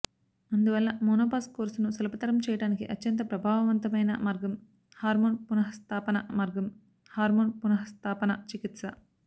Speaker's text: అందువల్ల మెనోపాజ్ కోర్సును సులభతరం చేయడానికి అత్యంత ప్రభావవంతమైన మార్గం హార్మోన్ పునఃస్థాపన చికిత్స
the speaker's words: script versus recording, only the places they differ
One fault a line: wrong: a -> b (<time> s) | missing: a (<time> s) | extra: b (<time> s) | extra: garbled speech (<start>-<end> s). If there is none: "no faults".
extra: మార్గం హార్మోన్ పునఃస్థాపన (6.3 s)